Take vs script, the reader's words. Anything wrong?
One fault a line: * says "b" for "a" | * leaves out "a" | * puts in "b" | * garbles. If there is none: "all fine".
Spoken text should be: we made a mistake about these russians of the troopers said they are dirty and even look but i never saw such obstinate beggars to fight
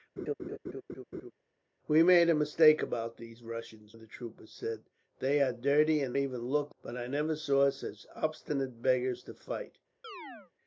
all fine